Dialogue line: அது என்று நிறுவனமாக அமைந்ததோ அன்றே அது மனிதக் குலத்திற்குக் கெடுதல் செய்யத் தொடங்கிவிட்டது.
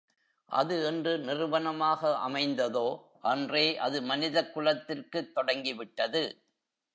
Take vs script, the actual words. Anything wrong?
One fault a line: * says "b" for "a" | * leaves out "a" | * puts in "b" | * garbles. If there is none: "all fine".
* leaves out "கெடுதல் செய்யத்"